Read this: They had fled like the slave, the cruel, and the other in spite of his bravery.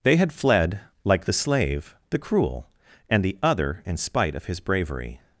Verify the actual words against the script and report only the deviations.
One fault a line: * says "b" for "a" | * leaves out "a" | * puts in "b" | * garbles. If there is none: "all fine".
all fine